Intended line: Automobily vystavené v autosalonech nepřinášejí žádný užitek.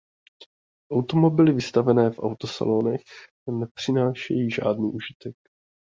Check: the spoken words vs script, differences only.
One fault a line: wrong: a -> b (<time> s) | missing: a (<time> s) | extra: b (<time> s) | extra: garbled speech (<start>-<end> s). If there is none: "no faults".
no faults